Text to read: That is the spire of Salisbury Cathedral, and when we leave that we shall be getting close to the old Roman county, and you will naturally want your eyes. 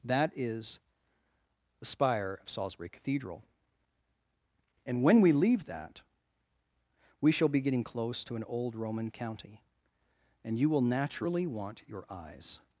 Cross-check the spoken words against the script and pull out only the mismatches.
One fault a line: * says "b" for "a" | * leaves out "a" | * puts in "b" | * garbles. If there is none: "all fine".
* says "an" for "the"